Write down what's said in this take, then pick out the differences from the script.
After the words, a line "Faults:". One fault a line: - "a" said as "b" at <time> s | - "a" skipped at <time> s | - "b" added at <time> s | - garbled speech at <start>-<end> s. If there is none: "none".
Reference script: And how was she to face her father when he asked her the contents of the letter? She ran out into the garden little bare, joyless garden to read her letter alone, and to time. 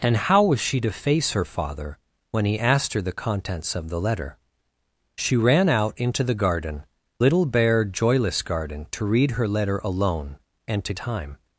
And how was she to face her father when he asked her the contents of the letter? She ran out into the garden little bare, joyless garden to read her letter alone, and to time.
Faults:
none